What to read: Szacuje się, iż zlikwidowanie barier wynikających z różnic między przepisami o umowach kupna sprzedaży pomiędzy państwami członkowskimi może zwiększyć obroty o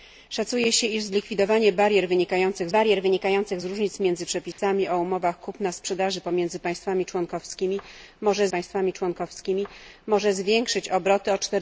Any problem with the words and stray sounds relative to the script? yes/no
yes